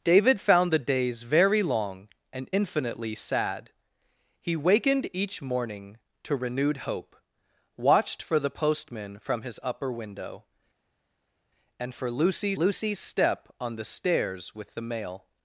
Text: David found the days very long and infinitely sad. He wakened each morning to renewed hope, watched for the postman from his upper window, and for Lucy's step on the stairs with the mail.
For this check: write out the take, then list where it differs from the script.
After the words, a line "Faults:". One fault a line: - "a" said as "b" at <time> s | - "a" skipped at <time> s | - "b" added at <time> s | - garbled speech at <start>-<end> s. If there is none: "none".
David found the days very long and infinitely sad. He wakened each morning to renewed hope, watched for the postman from his upper window, and for Lucy's Lucy's step on the stairs with the mail.
Faults:
- "Lucy's" added at 12.5 s